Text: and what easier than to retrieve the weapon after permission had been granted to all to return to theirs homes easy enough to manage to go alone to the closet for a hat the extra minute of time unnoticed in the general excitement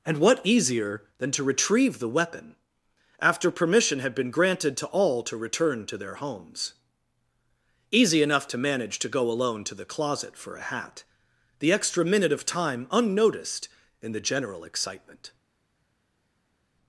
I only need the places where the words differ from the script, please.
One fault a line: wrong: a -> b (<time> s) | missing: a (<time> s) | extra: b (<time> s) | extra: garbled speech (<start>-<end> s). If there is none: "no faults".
wrong: theirs -> their (6.0 s)